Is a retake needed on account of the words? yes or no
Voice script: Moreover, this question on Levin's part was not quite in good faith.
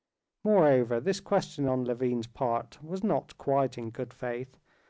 no